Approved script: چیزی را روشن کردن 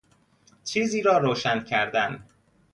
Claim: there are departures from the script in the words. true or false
false